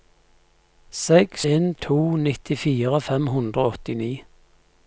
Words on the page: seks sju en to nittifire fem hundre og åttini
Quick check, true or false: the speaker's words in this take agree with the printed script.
false